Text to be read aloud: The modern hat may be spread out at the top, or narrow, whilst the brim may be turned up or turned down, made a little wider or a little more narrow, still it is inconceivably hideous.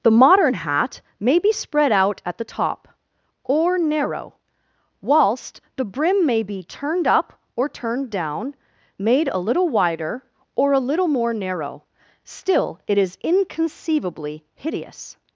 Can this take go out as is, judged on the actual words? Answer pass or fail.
pass